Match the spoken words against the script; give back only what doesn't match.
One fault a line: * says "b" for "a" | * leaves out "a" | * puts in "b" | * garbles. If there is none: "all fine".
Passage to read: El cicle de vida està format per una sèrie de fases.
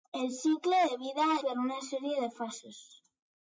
* leaves out "està format"